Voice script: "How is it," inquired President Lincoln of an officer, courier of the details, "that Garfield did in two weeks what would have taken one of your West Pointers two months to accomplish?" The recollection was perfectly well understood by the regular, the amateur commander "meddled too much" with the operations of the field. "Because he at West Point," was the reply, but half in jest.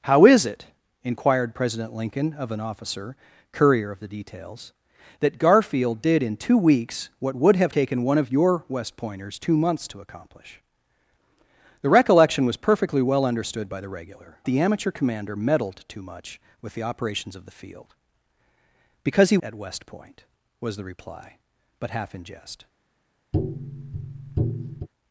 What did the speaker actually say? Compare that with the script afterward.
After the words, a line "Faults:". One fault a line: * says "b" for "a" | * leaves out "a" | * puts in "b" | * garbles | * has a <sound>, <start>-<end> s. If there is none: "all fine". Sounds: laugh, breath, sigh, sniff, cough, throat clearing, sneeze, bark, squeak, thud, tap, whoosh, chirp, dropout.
"How is it," inquired President Lincoln of an officer, courier of the details, "that Garfield did in two weeks what would have taken one of your West Pointers two months to accomplish?" The recollection was perfectly well understood by the regular, the amateur commander "meddled too much" with the operations of the field. "Because he at West Point," was the reply, but half in jest.
Faults:
* has a tap, 23.3-24.9 s